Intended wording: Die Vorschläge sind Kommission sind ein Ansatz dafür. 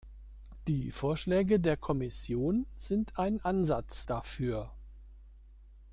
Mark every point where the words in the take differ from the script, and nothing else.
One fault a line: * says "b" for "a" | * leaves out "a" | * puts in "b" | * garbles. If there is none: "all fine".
* says "der" for "sind"